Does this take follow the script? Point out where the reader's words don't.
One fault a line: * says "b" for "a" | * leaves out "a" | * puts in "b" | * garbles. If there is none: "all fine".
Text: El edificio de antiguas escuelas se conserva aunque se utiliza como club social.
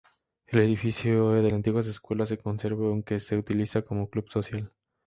all fine